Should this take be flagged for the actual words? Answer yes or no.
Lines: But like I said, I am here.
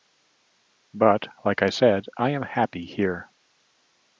yes